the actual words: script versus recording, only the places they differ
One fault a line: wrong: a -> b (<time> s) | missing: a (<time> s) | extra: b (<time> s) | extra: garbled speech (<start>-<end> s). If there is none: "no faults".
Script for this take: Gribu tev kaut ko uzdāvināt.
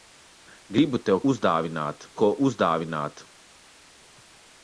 wrong: kaut -> uzdāvināt (1.3 s)